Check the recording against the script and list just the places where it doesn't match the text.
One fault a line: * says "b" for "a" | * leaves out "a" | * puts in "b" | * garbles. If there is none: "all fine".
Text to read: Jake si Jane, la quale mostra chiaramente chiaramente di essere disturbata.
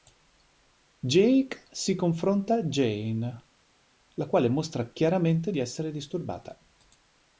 * puts in "confronta"
* leaves out "chiaramente"